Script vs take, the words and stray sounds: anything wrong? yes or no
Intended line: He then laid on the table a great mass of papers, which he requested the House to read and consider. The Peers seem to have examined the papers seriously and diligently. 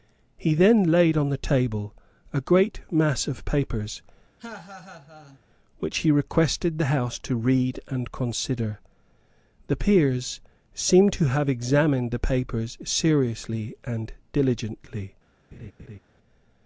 yes